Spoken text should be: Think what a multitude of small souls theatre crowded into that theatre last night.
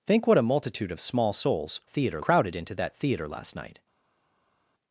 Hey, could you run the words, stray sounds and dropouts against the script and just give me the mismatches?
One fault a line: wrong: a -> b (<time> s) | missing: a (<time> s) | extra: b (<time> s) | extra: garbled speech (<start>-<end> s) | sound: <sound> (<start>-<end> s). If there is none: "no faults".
no faults